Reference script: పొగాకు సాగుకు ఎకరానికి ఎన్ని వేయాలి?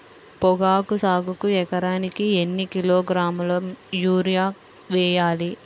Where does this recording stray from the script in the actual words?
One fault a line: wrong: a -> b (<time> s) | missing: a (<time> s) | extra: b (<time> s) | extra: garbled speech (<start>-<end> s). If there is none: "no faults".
extra: కిలోగ్రాముల యూరియా (2.7 s)